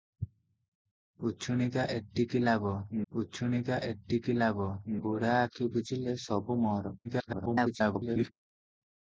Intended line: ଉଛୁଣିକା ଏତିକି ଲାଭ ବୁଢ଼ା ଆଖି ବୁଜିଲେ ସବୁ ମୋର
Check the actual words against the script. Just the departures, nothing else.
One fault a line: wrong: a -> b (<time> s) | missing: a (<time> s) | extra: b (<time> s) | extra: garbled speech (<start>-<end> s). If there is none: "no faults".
extra: ଉଛୁଣିକା ଏତିକି ଲାଭ (3.1 s)
extra: garbled speech (7.0-8.3 s)